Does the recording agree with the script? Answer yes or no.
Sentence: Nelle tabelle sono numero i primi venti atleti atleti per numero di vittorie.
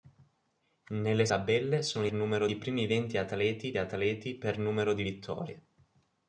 yes